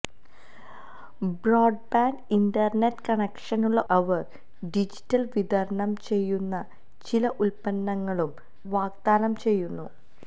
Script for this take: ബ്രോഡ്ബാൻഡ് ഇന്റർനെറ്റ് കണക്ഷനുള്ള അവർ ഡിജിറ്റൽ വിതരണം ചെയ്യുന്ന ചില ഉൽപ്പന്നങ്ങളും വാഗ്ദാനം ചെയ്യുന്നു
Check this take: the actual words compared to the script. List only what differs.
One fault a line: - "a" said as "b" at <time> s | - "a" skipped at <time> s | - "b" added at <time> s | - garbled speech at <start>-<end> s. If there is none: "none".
none